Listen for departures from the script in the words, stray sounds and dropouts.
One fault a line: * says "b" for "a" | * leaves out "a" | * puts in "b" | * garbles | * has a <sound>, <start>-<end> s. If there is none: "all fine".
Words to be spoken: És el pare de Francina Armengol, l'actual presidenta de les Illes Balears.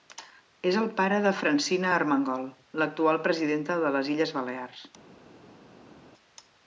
all fine